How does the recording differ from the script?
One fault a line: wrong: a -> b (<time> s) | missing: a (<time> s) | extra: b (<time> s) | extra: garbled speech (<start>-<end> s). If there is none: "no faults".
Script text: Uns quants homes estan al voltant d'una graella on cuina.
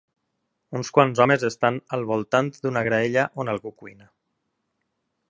extra: algú (3.5 s)